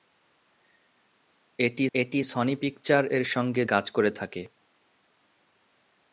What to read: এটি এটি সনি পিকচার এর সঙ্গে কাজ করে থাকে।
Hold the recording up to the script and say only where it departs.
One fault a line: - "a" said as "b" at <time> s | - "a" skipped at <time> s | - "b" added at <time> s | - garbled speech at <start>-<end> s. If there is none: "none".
none